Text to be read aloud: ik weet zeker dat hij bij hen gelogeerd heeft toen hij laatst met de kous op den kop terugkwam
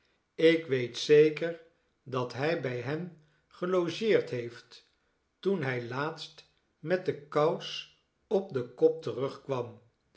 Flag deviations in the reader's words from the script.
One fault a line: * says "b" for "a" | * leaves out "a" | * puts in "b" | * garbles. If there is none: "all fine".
all fine